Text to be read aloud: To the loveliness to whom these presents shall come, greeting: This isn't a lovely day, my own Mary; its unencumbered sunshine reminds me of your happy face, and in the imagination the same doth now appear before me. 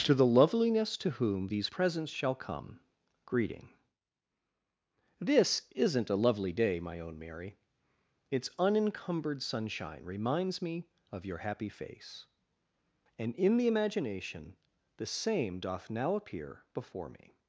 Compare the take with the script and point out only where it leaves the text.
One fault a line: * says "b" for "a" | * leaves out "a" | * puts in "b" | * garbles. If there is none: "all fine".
all fine